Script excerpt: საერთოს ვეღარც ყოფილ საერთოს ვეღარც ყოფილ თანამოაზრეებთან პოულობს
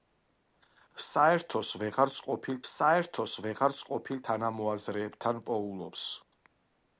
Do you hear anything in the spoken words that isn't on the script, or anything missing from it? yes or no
no